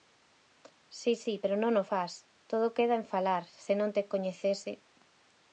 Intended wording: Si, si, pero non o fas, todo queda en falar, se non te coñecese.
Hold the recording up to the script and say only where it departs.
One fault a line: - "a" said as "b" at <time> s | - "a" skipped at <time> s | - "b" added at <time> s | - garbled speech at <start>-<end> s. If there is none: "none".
none